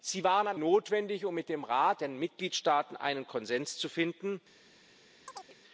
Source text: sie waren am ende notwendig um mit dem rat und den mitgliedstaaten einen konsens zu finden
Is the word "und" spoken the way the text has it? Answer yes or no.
no